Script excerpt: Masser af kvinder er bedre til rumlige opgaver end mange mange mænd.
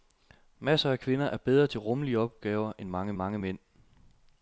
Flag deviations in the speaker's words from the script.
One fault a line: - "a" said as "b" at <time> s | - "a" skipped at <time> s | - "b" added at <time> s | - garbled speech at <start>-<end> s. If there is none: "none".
none